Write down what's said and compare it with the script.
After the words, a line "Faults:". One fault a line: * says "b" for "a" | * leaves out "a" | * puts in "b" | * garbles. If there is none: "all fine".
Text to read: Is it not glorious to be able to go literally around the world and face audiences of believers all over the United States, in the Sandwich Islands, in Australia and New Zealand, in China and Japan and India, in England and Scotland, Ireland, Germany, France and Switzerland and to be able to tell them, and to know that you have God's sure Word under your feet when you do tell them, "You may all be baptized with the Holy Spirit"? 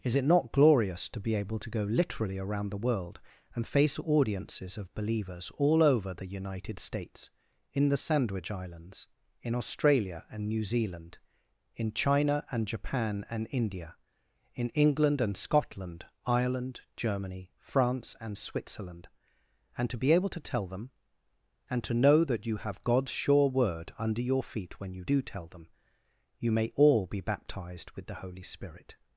Is it not glorious to be able to go literally around the world and face audiences of believers all over the United States, in the Sandwich Islands, in Australia and New Zealand, in China and Japan and India, in England and Scotland, Ireland, Germany, France and Switzerland and to be able to tell them, and to know that you have God's sure Word under your feet when you do tell them, "You may all be baptized with the Holy Spirit"?
Faults:
all fine